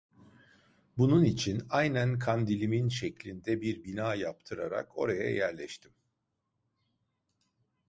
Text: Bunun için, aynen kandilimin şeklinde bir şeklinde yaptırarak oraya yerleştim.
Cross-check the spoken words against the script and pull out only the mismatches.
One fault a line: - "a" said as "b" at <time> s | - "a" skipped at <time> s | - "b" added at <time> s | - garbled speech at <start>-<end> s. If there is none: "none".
- "şeklinde" said as "bina" at 3.8 s